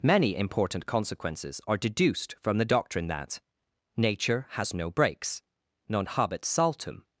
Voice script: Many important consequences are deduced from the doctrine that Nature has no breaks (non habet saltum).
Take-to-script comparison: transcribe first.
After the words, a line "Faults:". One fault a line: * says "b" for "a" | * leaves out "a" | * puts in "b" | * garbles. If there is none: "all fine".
Many important consequences are deduced from the doctrine that Nature has no breaks (non habet saltum).
Faults:
all fine